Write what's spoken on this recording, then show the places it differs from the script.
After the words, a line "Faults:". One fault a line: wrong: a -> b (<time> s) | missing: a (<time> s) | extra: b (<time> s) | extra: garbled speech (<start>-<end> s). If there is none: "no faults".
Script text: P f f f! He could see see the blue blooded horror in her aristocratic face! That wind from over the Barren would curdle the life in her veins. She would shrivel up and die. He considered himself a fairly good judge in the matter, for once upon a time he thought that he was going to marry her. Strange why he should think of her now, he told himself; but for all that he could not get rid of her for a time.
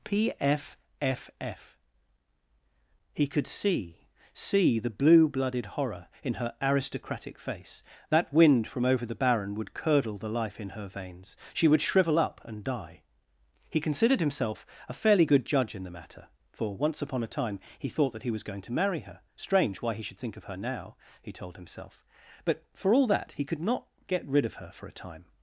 P f f f! He could see see the blue blooded horror in her aristocratic face! That wind from over the Barren would curdle the life in her veins. She would shrivel up and die. He considered himself a fairly good judge in the matter, for once upon a time he thought that he was going to marry her. Strange why he should think of her now, he told himself; but for all that he could not get rid of her for a time.
Faults:
no faults